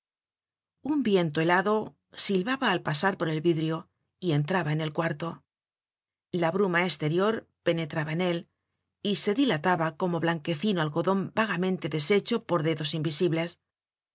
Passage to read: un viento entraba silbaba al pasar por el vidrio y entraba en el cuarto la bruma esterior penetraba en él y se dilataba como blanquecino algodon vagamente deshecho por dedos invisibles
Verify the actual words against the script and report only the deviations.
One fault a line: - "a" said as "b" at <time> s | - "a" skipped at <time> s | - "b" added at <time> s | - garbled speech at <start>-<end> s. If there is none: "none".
- "entraba" said as "helado" at 1.4 s